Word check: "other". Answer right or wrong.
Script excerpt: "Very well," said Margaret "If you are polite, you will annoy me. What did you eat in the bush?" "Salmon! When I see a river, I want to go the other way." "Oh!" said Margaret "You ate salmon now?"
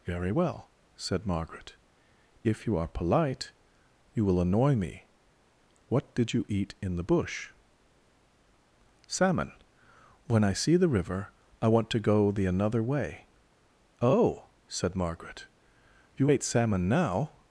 wrong